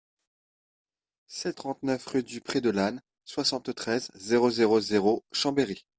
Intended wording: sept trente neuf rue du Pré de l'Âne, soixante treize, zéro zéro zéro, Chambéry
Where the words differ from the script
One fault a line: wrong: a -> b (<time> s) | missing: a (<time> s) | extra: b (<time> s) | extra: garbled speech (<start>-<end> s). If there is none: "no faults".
no faults